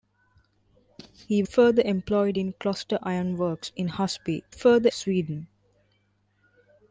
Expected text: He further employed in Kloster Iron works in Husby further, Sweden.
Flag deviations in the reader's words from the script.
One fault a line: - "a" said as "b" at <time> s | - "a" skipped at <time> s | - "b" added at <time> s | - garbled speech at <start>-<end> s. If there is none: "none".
none